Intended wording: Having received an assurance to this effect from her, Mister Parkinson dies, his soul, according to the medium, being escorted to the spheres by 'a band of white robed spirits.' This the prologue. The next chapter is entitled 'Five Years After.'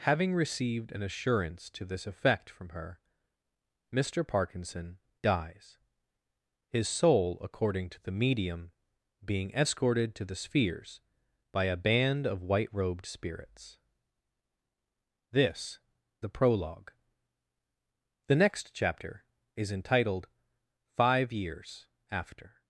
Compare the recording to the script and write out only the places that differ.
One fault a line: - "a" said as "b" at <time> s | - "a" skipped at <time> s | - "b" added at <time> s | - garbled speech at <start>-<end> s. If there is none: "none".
none